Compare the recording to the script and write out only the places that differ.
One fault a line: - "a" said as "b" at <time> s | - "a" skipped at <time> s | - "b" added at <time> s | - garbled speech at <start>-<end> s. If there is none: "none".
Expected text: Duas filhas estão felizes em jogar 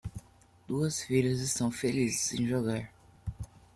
none